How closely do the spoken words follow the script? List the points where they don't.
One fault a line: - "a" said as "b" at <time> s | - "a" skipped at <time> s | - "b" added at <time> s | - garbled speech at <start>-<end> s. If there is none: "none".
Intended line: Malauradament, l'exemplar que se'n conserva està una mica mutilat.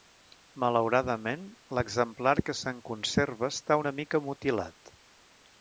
none